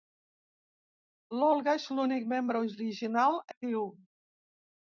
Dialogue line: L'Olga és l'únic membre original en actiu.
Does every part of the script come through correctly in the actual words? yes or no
no